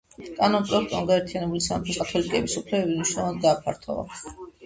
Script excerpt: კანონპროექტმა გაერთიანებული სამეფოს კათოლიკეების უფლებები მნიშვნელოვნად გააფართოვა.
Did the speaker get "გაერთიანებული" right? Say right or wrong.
right